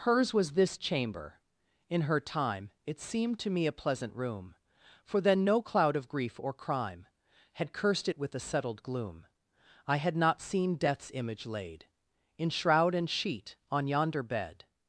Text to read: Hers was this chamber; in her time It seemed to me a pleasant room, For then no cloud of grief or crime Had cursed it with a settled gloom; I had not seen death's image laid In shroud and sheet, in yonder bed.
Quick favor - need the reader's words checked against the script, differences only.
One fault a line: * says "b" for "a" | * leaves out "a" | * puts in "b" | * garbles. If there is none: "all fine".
* says "on" for "in"